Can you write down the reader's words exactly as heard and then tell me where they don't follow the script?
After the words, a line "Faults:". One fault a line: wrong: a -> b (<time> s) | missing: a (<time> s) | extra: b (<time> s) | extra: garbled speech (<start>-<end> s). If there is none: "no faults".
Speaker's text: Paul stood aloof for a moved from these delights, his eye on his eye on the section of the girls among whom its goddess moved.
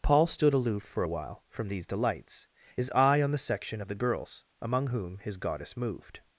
Paul stood aloof for a while from these delights, his eye on the section of the girls among whom his goddess moved.
Faults:
wrong: moved -> while (1.1 s)
missing: his eye on (3.3 s)
wrong: its -> his (5.2 s)